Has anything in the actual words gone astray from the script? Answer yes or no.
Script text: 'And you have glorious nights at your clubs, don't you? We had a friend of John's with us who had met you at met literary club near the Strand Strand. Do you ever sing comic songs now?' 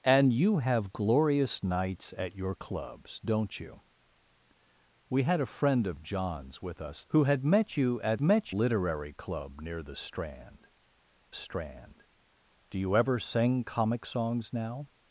no